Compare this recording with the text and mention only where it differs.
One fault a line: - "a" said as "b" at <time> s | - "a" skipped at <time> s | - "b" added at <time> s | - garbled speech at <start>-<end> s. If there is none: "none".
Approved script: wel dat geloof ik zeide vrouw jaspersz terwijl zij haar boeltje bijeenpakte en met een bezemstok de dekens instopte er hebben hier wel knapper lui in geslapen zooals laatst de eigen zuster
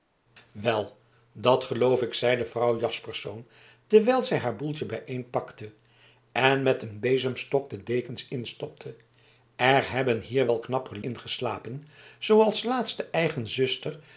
- "lui" skipped at 11.0 s